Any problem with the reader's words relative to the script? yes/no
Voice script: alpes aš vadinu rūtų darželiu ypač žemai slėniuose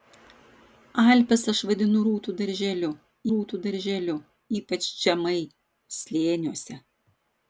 yes